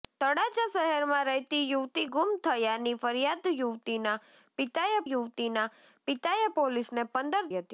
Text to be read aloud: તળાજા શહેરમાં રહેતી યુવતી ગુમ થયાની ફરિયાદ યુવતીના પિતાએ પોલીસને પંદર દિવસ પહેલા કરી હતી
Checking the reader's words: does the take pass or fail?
fail